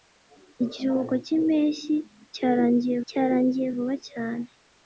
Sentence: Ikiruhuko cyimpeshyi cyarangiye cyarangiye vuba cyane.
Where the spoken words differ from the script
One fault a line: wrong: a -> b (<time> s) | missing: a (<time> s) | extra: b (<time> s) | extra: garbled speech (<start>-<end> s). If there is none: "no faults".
no faults